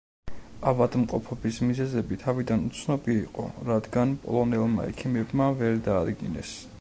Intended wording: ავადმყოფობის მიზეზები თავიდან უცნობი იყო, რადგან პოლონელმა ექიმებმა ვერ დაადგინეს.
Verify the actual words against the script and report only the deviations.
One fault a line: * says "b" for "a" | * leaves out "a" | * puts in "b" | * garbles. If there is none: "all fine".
all fine